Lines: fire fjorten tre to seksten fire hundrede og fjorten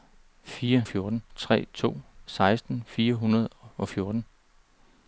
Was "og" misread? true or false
false